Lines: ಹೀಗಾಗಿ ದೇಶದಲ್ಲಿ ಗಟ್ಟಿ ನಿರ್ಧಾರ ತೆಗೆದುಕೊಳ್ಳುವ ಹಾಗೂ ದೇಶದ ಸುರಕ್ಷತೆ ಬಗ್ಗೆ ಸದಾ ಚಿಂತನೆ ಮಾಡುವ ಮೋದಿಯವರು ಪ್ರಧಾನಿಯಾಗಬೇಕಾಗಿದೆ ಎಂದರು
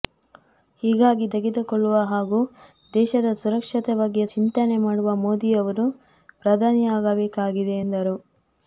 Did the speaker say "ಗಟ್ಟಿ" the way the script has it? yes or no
no